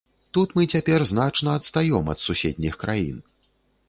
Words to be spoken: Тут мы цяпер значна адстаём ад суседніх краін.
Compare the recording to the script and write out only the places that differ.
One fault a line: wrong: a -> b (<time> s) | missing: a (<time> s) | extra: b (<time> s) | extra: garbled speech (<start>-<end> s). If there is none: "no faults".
no faults